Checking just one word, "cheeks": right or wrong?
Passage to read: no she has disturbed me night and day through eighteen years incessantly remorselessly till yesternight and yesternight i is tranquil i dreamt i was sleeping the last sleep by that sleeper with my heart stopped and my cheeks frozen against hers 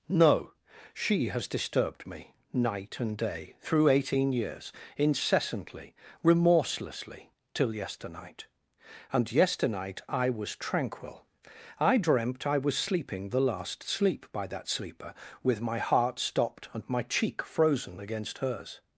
wrong